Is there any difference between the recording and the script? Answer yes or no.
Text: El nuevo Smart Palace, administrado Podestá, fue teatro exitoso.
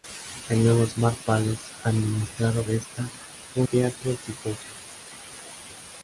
no